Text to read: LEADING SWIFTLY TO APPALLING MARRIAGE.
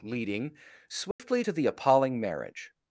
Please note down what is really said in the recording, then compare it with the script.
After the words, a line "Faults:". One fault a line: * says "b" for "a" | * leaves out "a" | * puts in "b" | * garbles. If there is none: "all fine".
LEADING SWIFTLY TO THE APPALLING MARRIAGE.
Faults:
* puts in "THE"